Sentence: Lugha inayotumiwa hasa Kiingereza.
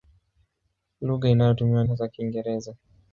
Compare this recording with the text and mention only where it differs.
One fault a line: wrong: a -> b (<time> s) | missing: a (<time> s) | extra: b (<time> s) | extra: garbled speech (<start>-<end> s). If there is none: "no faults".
no faults